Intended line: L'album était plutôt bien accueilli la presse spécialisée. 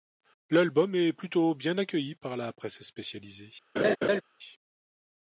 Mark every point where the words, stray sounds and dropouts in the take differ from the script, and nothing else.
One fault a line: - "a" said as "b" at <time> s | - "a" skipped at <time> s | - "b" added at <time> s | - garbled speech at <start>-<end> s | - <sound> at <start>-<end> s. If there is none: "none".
- "était" said as "est" at 0.9 s
- "par" added at 2.1 s
- laugh at 3.8-4.2 s